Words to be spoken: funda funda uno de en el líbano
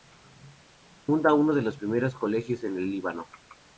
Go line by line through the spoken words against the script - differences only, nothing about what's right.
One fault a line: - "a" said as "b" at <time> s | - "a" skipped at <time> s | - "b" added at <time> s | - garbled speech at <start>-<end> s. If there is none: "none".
- "funda" skipped at 1.3 s
- "los primeros colegios" added at 1.6 s